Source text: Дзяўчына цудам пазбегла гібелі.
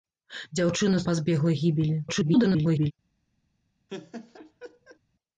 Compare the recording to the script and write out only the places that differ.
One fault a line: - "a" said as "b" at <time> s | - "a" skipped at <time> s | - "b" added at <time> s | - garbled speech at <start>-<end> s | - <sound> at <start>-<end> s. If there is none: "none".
- "цудам" skipped at 1.0 s
- garbled speech at 2.1-2.9 s
- laugh at 3.9-5.0 s